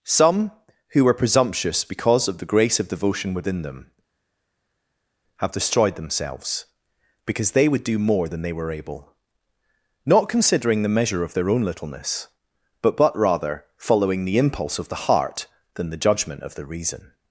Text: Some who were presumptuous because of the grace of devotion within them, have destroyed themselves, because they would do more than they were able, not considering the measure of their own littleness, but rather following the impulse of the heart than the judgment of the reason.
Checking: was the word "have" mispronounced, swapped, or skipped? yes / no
no